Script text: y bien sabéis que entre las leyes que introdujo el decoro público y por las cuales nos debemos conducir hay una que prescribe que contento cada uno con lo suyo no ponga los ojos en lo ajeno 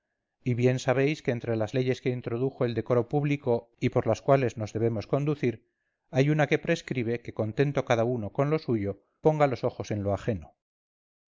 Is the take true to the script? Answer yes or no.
no